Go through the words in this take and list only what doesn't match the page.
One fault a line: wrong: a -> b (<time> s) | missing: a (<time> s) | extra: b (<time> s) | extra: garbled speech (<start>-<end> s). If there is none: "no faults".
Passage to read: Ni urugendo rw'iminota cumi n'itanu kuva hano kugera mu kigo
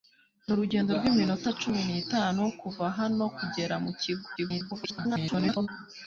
extra: garbled speech (4.4-5.7 s)